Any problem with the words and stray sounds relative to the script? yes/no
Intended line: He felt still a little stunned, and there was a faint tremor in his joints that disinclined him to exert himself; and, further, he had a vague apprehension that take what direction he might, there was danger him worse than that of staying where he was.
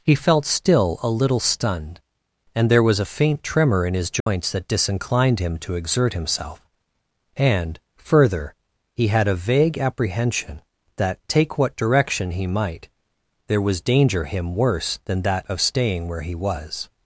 yes